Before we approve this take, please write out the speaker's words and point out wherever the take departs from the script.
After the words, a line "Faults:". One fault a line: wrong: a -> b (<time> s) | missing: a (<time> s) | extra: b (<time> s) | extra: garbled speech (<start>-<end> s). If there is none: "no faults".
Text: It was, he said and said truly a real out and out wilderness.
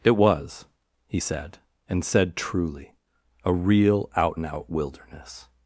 It was, he said and said truly a real out and out wilderness.
Faults:
no faults